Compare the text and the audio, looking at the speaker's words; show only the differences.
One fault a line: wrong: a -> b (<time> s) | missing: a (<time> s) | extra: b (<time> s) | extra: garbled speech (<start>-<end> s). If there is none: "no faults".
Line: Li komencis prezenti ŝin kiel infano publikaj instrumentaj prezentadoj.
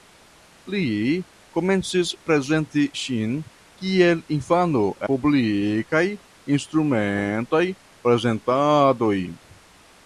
no faults